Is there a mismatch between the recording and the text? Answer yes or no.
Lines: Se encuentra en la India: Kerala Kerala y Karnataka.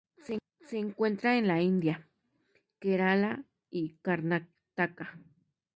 yes